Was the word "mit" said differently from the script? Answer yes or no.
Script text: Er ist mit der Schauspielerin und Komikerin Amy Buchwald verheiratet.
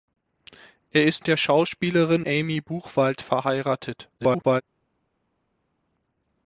yes